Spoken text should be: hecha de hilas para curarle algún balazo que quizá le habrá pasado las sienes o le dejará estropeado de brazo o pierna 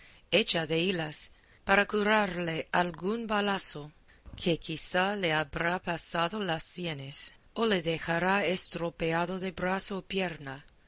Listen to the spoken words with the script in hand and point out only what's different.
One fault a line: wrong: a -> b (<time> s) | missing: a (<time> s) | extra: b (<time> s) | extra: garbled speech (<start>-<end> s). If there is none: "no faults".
no faults